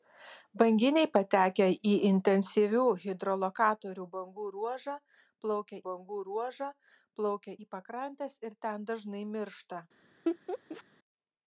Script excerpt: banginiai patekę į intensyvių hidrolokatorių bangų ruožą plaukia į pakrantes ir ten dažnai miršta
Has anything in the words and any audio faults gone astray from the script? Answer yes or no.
yes